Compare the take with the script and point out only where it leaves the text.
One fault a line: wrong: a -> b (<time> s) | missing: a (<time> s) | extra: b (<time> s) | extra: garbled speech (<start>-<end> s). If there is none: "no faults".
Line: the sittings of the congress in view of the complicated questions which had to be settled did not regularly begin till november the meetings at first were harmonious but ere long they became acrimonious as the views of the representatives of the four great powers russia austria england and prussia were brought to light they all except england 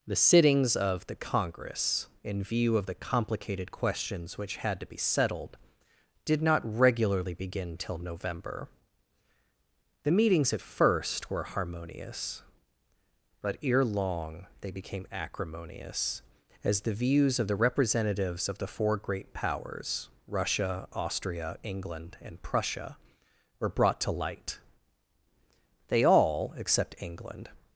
no faults